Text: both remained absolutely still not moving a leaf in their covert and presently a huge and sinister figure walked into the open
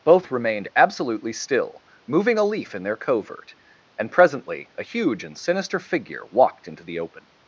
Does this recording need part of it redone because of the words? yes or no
yes